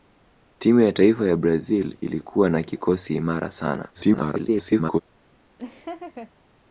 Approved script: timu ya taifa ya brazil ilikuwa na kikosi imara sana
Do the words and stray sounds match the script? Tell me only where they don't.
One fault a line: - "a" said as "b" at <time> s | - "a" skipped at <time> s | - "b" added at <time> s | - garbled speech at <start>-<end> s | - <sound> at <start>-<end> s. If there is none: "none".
- garbled speech at 3.9-5.0 s
- laugh at 5.6-6.3 s